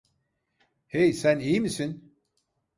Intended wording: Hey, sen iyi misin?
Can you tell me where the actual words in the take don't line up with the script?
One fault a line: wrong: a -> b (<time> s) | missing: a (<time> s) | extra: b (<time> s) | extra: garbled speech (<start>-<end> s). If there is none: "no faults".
no faults